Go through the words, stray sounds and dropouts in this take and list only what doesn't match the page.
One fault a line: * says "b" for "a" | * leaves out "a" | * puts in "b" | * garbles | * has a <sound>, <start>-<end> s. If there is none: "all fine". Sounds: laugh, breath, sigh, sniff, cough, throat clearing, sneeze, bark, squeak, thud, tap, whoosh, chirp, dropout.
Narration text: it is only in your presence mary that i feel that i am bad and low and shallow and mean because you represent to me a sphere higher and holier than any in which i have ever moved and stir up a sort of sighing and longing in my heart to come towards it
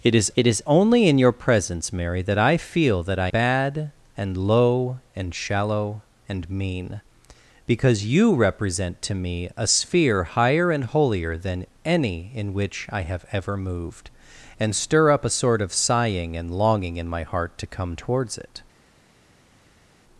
* puts in "it is"
* leaves out "am"